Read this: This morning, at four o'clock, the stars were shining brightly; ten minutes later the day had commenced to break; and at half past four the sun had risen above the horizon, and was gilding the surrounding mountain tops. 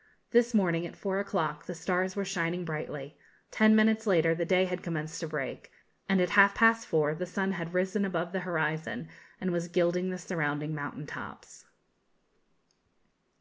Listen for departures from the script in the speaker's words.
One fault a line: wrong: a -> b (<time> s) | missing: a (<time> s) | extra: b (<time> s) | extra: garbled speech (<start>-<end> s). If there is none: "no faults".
no faults